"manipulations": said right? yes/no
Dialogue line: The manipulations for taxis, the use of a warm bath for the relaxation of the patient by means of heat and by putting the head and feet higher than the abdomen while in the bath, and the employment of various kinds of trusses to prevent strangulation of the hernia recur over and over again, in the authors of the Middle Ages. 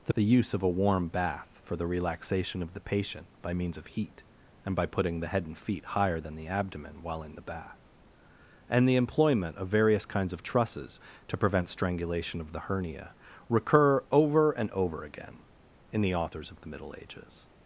no